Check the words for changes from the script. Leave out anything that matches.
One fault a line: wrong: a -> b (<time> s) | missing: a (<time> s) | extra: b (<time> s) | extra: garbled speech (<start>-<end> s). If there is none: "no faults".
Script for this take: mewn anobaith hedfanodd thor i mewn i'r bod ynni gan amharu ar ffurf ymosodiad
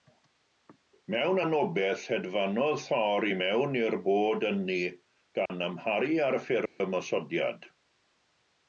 no faults